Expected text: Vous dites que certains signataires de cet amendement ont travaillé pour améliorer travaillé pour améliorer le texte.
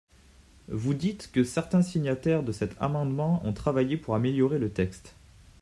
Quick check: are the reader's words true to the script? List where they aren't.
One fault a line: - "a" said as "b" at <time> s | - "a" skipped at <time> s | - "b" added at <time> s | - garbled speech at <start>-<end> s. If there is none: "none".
- "travaillé pour améliorer" skipped at 4.6 s